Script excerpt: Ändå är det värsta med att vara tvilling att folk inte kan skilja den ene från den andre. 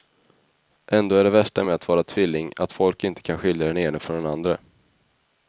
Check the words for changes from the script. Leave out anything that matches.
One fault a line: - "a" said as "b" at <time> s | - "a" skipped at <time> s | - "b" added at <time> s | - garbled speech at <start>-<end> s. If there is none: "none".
none